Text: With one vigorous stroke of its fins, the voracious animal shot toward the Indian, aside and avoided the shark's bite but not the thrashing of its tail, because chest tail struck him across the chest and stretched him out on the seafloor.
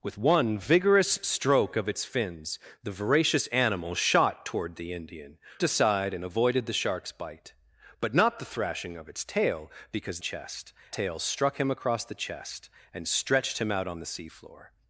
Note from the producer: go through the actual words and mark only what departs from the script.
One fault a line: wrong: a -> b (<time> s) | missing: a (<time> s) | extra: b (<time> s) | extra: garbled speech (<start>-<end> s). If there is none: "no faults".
no faults